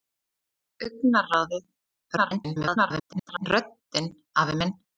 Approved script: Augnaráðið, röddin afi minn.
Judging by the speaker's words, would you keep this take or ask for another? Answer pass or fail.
fail